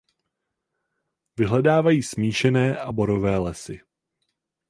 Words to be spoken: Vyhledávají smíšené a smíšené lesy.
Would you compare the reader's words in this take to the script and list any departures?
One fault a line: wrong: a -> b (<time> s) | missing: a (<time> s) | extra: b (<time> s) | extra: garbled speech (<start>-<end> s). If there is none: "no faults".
wrong: smíšené -> borové (2.9 s)